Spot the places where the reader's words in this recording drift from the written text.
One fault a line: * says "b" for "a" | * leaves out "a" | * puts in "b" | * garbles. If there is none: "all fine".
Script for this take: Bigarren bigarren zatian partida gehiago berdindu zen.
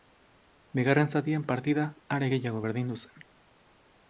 * leaves out "bigarren"
* puts in "are"